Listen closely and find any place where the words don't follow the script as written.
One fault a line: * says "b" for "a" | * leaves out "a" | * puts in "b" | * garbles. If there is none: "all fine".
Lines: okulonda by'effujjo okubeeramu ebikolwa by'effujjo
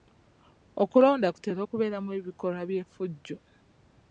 * says "kutera" for "by'effujjo"